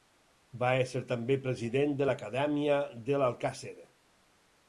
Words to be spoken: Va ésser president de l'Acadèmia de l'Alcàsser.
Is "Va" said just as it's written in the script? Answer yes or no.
yes